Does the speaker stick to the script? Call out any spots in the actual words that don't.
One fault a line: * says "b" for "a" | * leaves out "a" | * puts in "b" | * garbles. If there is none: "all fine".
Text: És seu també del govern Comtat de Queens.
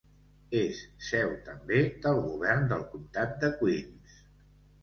* puts in "del"